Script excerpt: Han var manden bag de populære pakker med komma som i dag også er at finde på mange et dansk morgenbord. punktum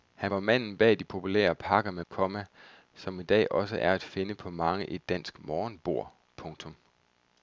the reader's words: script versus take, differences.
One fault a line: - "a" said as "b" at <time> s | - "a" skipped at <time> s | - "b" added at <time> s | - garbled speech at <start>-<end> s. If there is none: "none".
none